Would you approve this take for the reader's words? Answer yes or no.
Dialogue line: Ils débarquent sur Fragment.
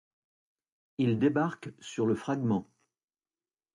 no